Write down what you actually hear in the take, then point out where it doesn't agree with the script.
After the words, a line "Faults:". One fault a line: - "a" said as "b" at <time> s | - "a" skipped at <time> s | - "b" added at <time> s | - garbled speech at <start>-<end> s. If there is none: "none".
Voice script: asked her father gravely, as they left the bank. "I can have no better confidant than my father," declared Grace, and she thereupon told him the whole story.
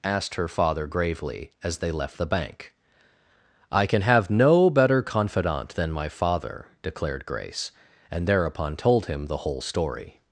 asked her father gravely, as they left the bank. "I can have no better confidant than my father," declared Grace, and thereupon told him the whole story.
Faults:
- "she" skipped at 8.3 s